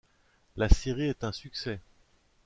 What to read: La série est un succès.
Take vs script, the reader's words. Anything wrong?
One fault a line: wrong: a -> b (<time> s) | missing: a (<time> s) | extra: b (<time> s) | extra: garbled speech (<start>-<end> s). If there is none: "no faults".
no faults